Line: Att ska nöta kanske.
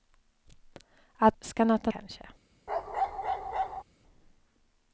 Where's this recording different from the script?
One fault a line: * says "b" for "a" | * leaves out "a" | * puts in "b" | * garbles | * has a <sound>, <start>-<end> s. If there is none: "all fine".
* has a bark, 2.7-3.8 s